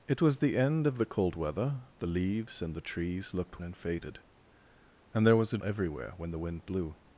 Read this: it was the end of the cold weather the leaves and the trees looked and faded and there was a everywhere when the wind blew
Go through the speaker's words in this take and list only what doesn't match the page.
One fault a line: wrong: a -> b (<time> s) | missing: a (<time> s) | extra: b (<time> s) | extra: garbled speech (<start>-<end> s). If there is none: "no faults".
no faults